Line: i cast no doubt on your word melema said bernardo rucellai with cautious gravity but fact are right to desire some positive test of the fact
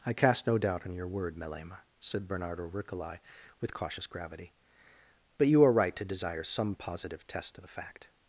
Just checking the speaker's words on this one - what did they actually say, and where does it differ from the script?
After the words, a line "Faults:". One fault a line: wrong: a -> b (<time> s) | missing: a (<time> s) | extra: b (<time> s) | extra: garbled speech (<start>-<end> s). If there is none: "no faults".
i cast no doubt on your word melema said bernardo rucellai with cautious gravity but you are right to desire some positive test of the fact
Faults:
wrong: fact -> you (5.5 s)